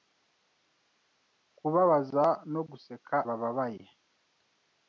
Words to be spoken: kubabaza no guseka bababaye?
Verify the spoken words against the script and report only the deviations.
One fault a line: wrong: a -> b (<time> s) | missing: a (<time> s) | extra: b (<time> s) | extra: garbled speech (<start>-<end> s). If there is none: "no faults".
no faults